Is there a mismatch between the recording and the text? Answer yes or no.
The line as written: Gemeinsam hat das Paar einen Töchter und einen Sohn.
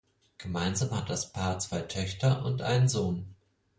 yes